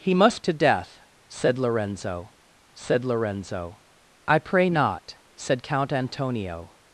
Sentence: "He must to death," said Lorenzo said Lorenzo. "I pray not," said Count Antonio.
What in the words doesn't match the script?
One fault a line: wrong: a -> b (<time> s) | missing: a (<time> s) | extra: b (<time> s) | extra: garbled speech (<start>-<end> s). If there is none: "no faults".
no faults